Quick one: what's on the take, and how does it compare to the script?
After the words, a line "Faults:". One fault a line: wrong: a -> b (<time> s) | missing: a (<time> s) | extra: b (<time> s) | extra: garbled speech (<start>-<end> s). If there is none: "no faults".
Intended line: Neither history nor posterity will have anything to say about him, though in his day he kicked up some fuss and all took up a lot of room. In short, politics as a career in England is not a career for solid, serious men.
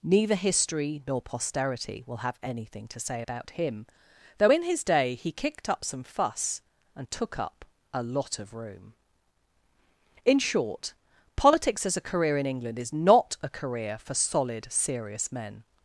Neither history nor posterity will have anything to say about him, though in his day he kicked up some fuss and took up a lot of room. In short, politics as a career in England is not a career for solid, serious men.
Faults:
missing: all (7.1 s)